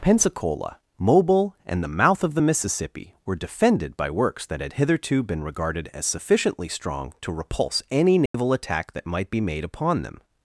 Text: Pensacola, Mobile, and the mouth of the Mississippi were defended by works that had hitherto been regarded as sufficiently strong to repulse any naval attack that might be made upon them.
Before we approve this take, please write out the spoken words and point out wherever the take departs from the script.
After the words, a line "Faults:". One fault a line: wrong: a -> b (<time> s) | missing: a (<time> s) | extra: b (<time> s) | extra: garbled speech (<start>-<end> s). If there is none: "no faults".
Pensacola, Mobile, and the mouth of the Mississippi were defended by works that had hitherto been regarded as sufficiently strong to repulse any naval attack that might be made upon them.
Faults:
no faults